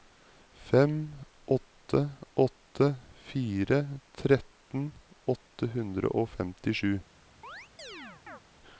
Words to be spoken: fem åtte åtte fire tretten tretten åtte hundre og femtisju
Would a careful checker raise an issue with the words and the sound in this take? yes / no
yes